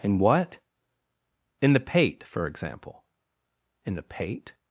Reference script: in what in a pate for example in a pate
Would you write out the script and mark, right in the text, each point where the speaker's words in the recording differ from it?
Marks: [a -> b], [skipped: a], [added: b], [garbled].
in what in [a -> the] pate for example in [a -> the] pate